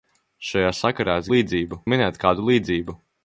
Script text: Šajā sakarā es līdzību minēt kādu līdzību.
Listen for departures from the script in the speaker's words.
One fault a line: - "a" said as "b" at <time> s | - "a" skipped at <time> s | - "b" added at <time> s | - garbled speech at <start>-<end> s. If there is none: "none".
none